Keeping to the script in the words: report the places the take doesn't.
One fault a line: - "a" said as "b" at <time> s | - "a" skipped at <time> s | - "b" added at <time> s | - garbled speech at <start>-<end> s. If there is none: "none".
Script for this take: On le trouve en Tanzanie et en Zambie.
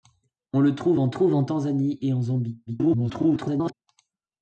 - "trouve en" added at 1.1 s
- garbled speech at 2.7-3.7 s